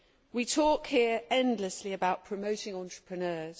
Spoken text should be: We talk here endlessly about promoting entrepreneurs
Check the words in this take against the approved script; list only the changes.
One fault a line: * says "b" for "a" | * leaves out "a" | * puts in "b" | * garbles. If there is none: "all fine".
all fine